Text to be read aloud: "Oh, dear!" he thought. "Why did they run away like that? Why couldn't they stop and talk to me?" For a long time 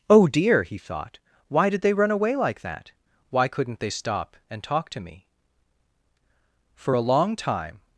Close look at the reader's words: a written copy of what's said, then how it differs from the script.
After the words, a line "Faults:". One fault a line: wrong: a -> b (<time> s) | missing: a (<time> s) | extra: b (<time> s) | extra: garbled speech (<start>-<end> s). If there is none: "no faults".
"Oh, dear!" he thought. "Why did they run away like that? Why couldn't they stop and talk to me?" For a long time
Faults:
no faults